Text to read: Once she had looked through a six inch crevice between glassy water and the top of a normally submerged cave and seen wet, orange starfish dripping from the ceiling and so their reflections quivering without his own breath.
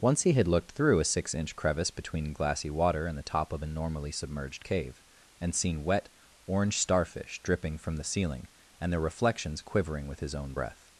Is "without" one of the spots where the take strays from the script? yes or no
yes